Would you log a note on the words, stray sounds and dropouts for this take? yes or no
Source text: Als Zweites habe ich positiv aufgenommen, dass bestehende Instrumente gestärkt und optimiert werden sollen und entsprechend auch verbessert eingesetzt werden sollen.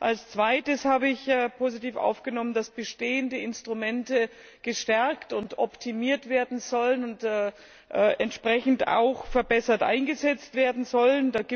no